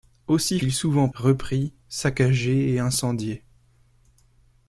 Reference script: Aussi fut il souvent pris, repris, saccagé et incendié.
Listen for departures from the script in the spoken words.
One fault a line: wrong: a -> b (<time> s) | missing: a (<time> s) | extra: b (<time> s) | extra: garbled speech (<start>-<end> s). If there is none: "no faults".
missing: fut (0.6 s)
missing: pris (1.1 s)